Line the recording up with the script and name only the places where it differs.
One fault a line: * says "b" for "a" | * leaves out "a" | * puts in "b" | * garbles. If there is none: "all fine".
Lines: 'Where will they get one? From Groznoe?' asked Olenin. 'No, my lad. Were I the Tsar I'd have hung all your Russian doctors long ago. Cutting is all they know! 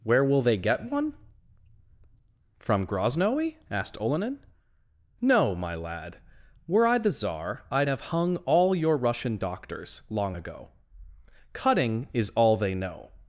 all fine